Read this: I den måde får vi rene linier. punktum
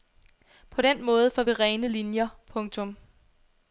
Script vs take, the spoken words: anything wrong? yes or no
yes